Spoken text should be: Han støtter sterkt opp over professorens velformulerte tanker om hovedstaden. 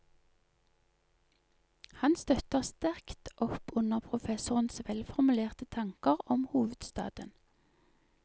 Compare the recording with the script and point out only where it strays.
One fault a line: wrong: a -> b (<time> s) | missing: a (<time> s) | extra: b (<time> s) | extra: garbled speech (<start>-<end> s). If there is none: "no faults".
wrong: over -> under (3.8 s)